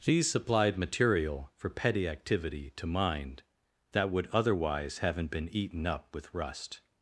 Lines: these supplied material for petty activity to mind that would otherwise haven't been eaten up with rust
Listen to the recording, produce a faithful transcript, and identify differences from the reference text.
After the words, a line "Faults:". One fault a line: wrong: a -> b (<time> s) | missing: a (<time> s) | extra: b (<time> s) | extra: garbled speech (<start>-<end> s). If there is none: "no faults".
these supplied material for petty activity to mind that would otherwise haven't been eaten up with rust
Faults:
no faults